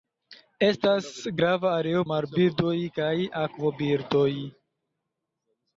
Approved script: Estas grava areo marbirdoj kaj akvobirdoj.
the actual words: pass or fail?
pass